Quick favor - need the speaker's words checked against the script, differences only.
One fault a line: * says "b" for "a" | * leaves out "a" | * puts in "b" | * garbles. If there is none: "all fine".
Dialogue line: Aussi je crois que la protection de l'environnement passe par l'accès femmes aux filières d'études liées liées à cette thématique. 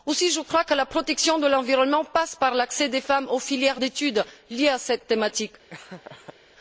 * puts in "des"
* leaves out "liées"